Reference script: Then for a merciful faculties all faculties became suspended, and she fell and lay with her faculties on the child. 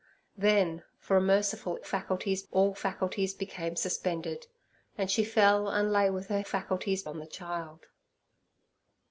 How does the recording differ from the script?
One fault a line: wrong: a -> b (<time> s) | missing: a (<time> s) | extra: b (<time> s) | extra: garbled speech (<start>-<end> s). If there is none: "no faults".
no faults